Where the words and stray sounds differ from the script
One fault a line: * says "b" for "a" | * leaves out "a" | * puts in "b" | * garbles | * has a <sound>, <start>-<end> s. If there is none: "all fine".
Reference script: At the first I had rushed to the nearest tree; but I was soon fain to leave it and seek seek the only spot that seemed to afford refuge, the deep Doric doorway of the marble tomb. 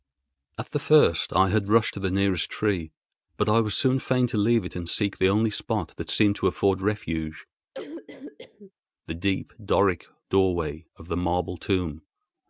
* leaves out "seek"
* has a cough, 7.7-8.7 s